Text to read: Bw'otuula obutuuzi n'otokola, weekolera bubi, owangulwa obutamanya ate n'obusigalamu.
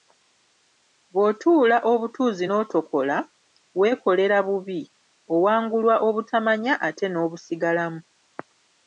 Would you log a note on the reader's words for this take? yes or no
no